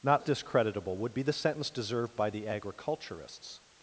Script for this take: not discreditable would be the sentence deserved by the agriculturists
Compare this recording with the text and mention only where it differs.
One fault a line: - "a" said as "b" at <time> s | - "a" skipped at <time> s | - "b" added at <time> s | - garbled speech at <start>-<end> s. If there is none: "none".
none